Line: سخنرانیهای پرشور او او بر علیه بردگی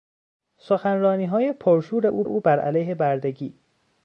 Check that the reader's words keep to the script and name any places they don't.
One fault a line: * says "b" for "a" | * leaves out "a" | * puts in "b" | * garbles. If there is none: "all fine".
all fine